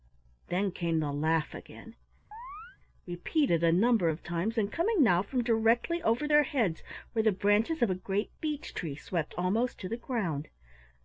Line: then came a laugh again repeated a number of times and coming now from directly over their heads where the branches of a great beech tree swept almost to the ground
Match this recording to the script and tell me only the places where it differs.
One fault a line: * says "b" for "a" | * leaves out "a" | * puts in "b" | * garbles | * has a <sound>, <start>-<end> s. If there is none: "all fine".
* says "the" for "a"
* has a chirp, 2.3-2.8 s